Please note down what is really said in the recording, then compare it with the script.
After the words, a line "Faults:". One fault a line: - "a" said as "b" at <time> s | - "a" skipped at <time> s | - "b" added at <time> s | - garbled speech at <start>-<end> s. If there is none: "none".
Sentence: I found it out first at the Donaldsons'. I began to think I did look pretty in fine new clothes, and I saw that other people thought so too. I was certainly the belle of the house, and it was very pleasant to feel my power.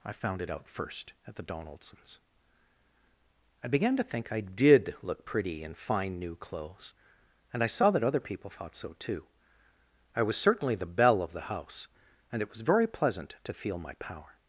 I found it out first at the Donaldsons'. I began to think I did look pretty in fine new clothes, and I saw that other people thought so too. I was certainly the belle of the house, and it was very pleasant to feel my power.
Faults:
none